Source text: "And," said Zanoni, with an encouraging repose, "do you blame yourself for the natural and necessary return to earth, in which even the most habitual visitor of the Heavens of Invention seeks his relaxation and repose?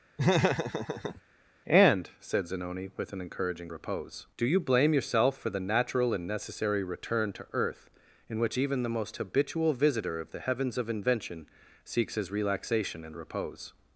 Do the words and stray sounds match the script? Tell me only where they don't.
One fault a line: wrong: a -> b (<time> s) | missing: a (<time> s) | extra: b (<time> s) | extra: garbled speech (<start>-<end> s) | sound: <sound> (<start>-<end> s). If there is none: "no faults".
sound: laugh (0.2-1.2 s)